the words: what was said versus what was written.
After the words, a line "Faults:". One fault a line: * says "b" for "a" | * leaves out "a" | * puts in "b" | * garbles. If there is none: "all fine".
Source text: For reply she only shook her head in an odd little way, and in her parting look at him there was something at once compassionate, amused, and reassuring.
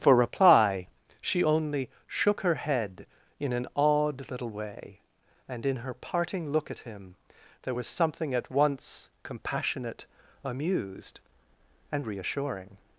For reply she only shook her head in an odd little way, and in her parting look at him there was something at once compassionate, amused, and reassuring.
Faults:
all fine